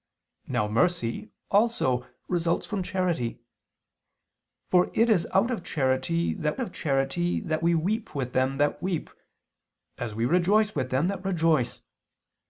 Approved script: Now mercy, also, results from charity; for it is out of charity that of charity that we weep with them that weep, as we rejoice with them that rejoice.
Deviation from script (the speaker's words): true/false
false